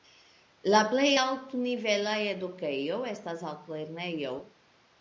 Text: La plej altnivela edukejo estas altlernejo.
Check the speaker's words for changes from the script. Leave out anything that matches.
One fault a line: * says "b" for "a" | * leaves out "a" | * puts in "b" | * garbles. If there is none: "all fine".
all fine